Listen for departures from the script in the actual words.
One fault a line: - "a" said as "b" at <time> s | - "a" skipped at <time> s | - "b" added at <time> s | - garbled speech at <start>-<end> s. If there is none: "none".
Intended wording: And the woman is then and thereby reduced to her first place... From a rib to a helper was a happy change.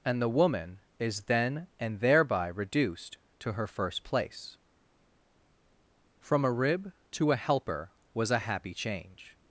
none